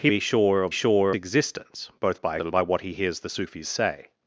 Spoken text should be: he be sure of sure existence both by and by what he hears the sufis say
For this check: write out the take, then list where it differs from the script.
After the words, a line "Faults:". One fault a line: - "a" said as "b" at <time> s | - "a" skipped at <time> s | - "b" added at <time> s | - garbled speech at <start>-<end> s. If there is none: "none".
he be sure of sure existence both by and by what he hears the sufis say
Faults:
none